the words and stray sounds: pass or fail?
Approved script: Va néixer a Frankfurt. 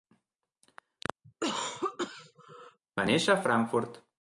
fail